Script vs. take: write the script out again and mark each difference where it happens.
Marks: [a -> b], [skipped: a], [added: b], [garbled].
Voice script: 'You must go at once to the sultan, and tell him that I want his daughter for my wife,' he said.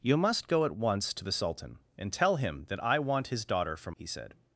'You must go at once to the sultan, and tell him that I want his daughter for [skipped: my wife,'] he said.